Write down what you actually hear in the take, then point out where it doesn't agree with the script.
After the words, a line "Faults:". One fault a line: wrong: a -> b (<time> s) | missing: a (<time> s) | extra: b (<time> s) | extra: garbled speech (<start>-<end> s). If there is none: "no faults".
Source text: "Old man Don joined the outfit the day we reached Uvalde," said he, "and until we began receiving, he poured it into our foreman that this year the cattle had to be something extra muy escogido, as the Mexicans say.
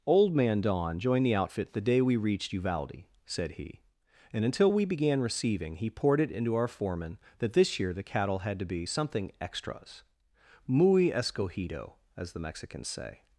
"Old man Don joined the outfit the day we reached Uvalde," said he, "and until we began receiving, he poured it into our foreman that this year the cattle had to be something extras muy escogido, as the Mexicans say.
Faults:
wrong: extra -> extras (9.4 s)